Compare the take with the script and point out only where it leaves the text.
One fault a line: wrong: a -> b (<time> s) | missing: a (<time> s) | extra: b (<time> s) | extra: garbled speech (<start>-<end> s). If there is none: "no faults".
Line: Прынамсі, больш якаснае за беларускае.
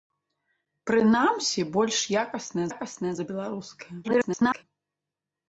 extra: якаснае (2.7 s)
extra: garbled speech (4.0-4.6 s)